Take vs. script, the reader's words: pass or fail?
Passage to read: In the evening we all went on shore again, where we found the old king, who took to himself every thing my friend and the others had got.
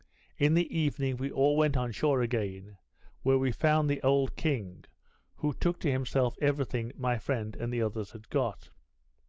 pass